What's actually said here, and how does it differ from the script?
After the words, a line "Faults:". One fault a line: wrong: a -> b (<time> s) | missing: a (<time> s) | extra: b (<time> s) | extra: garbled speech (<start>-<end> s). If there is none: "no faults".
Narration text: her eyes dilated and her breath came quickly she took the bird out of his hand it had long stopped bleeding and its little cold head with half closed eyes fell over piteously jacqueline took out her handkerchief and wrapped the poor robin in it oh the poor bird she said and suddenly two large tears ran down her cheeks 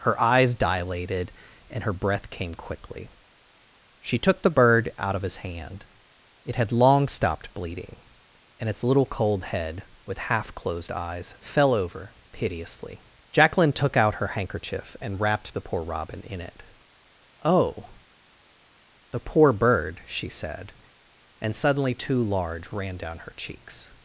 her eyes dilated and her breath came quickly she took the bird out of his hand it had long stopped bleeding and its little cold head with half closed eyes fell over piteously jacqueline took out her handkerchief and wrapped the poor robin in it oh the poor bird she said and suddenly two large ran down her cheeks
Faults:
missing: tears (22.7 s)